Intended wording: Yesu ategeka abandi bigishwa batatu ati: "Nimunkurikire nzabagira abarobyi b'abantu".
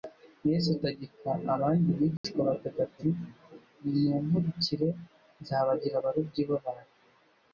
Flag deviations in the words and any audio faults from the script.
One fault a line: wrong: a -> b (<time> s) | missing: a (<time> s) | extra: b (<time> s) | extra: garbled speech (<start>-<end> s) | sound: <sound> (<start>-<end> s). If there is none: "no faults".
sound: dropout (2.2-2.2 s)